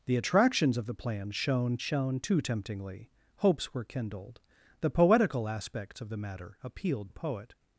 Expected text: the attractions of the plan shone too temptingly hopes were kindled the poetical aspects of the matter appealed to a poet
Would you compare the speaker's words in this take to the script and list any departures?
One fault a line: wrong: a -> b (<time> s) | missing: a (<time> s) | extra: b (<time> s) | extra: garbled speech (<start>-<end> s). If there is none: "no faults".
extra: shone (1.8 s)
missing: to (7.1 s)